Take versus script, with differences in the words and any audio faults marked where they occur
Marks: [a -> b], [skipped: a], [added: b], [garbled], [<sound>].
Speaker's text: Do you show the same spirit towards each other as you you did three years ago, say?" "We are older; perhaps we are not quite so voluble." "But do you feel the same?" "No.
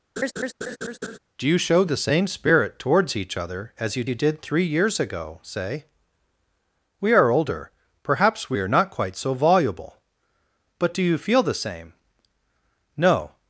[laugh] Do you show the same spirit towards each other as you you did three years ago, say?" "We are older; perhaps we are not quite so voluble." "But do you feel the same?" "No.